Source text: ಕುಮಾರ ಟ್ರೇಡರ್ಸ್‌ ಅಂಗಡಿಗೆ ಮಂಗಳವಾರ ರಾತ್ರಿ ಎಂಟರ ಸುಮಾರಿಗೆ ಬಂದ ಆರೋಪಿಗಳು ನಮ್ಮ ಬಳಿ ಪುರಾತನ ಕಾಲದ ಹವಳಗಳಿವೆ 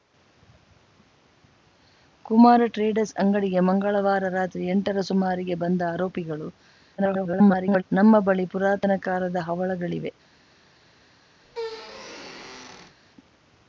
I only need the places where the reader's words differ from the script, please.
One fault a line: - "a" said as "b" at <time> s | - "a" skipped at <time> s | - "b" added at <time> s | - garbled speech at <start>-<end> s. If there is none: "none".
- garbled speech at 7.0-7.8 s